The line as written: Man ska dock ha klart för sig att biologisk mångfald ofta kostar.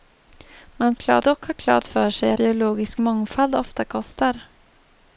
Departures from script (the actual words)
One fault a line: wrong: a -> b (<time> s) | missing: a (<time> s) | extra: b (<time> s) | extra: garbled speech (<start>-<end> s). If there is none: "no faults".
wrong: ska -> klart (0.9 s)
missing: att (2.3 s)